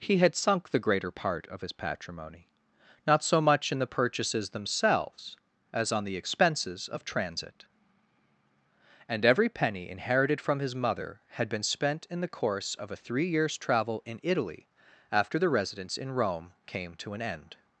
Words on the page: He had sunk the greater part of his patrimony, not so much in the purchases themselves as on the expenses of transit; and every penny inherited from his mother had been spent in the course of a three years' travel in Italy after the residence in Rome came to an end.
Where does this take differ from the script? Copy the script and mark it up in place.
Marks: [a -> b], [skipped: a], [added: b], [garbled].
He had sunk the greater part of his patrimony, not so much in the purchases themselves as on the expenses of transit; and every penny inherited from his mother had been spent in the course of a three years' travel in Italy after the residence in Rome came to an end.